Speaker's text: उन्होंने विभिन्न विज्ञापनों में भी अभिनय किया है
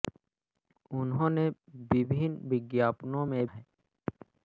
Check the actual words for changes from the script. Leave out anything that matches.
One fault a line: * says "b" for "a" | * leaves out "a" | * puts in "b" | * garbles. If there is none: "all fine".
* leaves out "भी अभिनय किया"